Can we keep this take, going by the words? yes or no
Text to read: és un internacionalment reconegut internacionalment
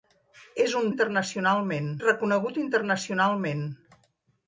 yes